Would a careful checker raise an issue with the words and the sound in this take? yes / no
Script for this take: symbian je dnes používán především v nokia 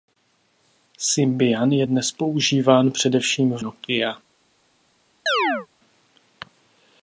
yes